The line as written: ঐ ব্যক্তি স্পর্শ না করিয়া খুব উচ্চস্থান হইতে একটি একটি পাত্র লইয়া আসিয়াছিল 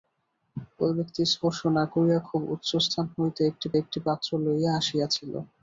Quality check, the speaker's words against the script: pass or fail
pass